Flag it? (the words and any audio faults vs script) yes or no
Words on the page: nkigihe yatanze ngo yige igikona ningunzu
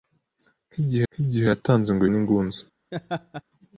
yes